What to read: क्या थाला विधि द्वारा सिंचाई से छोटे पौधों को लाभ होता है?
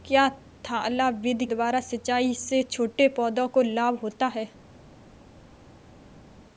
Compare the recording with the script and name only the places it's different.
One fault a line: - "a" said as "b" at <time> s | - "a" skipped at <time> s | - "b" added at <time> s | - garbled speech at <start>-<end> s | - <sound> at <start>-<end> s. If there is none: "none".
none